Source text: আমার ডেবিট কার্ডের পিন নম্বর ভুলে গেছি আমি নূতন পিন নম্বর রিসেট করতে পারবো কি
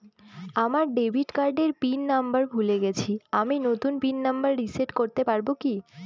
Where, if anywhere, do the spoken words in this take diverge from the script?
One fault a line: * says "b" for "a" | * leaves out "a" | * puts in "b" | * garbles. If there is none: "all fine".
all fine